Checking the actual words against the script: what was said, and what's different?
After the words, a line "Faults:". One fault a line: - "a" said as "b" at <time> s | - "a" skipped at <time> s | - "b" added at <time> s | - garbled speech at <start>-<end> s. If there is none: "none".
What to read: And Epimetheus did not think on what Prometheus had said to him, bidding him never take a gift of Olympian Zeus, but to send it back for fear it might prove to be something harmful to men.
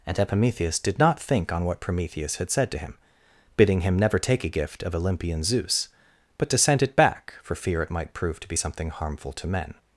And Epimetheus did not think on what Prometheus had said to him, bidding him never take a gift of Olympian Zeus, but to send it back for fear it might prove to be something harmful to men.
Faults:
none